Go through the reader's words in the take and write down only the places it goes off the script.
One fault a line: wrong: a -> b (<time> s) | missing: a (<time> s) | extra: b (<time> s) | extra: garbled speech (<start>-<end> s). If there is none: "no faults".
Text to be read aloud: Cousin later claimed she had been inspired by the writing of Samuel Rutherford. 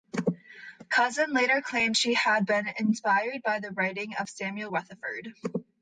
no faults